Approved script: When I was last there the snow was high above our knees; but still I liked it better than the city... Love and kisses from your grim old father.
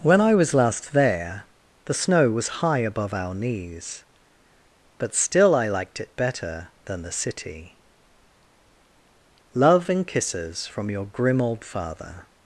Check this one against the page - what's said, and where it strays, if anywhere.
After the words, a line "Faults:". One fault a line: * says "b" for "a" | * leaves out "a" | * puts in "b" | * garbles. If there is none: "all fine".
When I was last there the snow was high above our knees; but still I liked it better than the city... Love and kisses from your grim old father.
Faults:
all fine